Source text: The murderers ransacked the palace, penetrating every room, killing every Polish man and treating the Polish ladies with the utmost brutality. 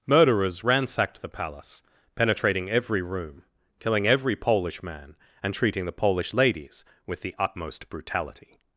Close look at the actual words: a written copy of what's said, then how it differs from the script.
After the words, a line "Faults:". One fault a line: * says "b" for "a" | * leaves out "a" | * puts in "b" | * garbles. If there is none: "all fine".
murderers ransacked the palace, penetrating every room, killing every Polish man and treating the Polish ladies with the utmost brutality.
Faults:
* leaves out "The"